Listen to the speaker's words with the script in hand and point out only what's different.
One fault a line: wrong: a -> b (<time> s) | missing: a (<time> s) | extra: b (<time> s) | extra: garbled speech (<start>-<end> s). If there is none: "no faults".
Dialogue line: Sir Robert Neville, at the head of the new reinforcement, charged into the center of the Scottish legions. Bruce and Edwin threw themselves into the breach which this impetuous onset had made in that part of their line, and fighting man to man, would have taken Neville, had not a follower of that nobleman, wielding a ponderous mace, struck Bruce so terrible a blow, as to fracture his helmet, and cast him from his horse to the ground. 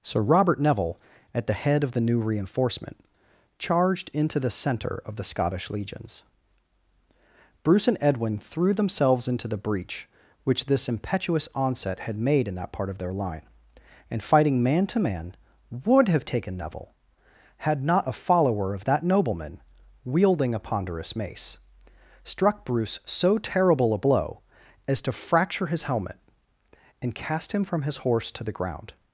no faults